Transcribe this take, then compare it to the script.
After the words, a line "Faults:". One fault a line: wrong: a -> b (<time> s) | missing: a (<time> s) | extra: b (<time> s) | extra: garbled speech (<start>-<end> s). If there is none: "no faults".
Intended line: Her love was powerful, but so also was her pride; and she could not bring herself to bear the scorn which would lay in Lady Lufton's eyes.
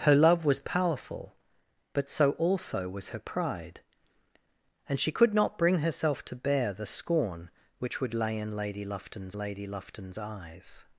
Her love was powerful, but so also was her pride; and she could not bring herself to bear the scorn which would lay in Lady Lufton's Lady Lufton's eyes.
Faults:
extra: Lady Lufton's (9.4 s)